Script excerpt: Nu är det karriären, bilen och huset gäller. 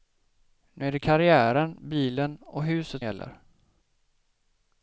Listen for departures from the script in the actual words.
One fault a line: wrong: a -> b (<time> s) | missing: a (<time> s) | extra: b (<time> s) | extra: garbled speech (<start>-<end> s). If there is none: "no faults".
no faults